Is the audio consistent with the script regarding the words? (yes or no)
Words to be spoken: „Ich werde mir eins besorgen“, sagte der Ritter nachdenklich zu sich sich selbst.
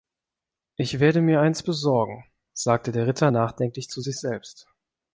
no